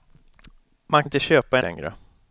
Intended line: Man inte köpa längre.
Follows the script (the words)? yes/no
yes